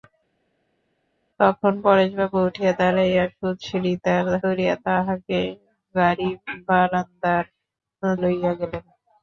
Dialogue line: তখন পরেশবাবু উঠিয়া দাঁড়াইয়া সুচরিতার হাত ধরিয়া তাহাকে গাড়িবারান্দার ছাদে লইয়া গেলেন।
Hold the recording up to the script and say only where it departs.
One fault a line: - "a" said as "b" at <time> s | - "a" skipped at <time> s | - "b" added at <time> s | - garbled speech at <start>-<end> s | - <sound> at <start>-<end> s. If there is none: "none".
- "হাত" skipped at 4.3 s
- "ছাদে" skipped at 7.4 s